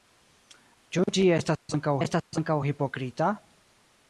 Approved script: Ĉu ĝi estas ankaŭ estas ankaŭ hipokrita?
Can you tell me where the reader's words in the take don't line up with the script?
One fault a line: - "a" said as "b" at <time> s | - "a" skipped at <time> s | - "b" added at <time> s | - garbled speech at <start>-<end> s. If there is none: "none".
none